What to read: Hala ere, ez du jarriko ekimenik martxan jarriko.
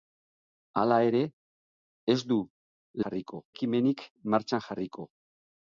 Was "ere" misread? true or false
false